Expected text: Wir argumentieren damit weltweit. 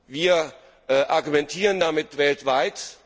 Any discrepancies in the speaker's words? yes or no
no